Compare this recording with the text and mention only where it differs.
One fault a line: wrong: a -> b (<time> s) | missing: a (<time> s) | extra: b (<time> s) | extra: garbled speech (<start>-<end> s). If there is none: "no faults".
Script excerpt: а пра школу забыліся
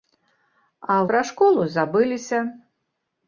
no faults